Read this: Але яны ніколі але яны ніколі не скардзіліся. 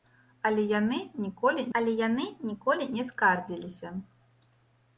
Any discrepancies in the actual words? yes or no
no